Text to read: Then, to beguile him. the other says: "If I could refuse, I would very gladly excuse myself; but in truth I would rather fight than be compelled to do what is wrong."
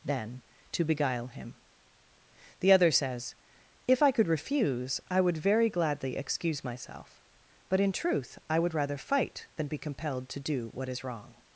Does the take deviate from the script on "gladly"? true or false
false